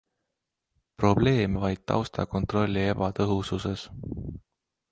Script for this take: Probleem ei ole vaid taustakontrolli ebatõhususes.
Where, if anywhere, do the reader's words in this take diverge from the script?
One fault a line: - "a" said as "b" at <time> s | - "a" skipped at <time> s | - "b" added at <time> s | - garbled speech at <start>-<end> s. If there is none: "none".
- "ei ole" skipped at 1.6 s